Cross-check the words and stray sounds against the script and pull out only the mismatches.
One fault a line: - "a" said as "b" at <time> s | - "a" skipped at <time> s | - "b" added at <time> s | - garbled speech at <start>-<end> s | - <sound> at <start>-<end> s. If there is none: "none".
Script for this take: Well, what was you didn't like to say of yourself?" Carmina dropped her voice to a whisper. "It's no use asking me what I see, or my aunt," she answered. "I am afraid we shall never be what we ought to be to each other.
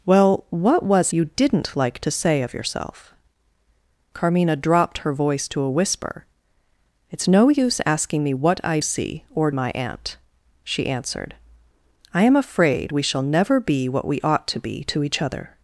none